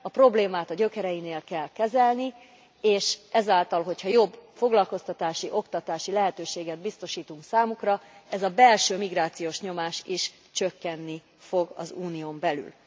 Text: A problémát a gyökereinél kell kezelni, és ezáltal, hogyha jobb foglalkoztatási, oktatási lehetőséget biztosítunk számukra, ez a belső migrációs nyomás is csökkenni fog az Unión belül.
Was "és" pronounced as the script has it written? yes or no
yes